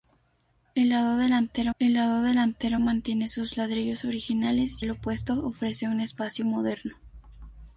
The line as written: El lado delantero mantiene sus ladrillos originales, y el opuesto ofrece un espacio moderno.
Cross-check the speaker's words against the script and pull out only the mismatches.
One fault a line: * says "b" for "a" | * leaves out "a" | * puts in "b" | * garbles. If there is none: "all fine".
* puts in "el lado delantero"
* leaves out "y"